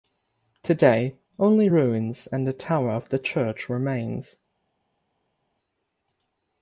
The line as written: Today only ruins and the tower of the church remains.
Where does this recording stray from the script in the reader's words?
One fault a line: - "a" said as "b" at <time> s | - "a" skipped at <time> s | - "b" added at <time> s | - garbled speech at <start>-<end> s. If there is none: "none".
none